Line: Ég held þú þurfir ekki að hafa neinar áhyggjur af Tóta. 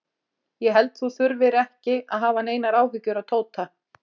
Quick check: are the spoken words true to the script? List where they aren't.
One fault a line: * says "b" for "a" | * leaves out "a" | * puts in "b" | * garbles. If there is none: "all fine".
all fine